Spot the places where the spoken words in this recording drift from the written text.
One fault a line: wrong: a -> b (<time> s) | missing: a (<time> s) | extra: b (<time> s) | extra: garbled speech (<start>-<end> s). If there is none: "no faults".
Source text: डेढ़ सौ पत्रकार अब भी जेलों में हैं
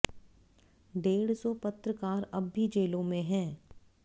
no faults